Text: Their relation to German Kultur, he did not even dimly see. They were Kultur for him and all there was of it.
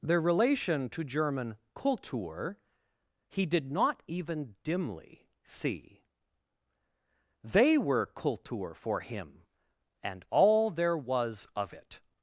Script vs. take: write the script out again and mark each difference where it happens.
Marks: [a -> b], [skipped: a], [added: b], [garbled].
Their relation to German Kultur, he did not even dimly see. They were Kultur for him and all there was of it.